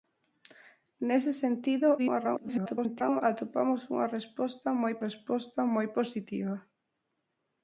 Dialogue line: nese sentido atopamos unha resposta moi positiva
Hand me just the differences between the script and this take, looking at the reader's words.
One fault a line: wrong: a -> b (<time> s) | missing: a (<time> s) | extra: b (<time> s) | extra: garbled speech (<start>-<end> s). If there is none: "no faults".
extra: garbled speech (2.0-3.2 s)
extra: resposta moi (5.1 s)